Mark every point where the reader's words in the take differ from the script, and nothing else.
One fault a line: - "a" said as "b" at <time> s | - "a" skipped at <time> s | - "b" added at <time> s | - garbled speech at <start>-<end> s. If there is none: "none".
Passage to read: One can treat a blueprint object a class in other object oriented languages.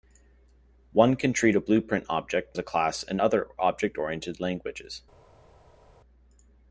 none